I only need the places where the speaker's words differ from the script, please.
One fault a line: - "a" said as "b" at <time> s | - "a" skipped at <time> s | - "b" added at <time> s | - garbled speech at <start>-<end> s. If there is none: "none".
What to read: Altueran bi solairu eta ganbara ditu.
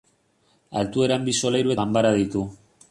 - "eta" skipped at 1.8 s